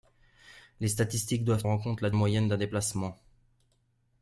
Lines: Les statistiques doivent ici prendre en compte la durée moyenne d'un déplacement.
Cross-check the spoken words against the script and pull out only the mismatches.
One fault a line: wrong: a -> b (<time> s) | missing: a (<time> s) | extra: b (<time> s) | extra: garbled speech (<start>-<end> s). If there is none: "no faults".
missing: ici prendre (1.6 s)
missing: durée (2.1 s)